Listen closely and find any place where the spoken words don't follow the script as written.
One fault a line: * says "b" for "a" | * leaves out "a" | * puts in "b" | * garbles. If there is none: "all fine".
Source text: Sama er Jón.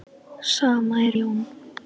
all fine